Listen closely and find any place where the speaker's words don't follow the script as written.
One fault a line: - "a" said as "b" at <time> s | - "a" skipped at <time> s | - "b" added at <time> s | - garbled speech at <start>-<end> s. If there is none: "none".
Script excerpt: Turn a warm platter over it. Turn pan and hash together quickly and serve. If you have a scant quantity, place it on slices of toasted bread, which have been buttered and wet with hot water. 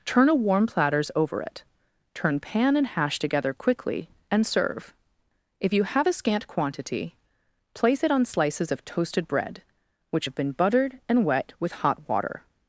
- "platter" said as "platters" at 0.7 s